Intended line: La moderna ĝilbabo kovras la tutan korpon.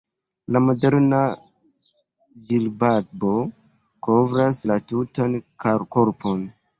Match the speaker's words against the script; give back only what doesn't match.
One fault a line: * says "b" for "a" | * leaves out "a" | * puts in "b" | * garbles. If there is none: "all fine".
all fine